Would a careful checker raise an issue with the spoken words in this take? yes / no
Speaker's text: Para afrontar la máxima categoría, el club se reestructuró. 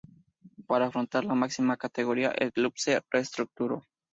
no